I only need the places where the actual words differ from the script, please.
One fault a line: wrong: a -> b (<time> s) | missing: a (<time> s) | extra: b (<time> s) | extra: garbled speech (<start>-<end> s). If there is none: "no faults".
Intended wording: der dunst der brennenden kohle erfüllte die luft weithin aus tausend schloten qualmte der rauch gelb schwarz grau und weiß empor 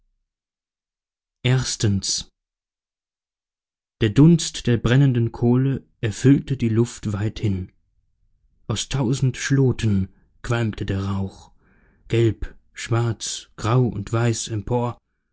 no faults